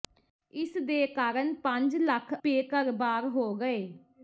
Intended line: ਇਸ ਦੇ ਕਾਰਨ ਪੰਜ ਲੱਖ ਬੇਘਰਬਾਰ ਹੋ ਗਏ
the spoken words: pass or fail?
pass